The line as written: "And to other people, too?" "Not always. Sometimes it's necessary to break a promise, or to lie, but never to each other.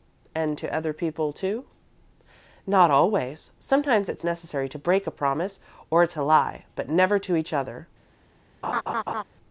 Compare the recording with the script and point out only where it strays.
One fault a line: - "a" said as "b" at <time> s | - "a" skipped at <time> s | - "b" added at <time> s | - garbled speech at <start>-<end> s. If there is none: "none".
none